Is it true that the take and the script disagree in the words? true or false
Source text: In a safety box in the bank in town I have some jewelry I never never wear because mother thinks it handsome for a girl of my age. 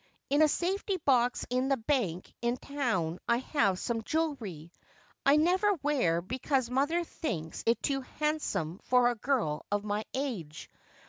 true